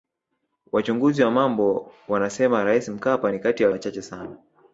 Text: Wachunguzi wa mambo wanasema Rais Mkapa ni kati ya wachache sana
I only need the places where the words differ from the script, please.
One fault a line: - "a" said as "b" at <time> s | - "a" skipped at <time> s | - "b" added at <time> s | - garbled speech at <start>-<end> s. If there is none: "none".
none